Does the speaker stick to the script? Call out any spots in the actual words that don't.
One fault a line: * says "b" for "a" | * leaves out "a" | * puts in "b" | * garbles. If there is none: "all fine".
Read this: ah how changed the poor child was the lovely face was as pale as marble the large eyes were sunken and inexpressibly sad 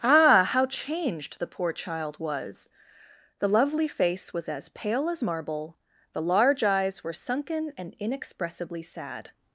all fine